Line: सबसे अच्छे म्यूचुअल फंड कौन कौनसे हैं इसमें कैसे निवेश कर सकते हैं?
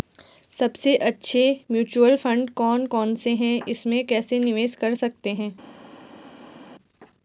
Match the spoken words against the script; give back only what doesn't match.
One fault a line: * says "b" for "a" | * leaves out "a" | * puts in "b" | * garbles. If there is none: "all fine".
all fine